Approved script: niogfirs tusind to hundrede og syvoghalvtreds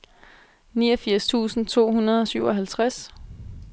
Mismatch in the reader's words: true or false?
false